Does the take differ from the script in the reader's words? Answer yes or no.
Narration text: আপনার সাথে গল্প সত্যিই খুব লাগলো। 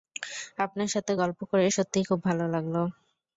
yes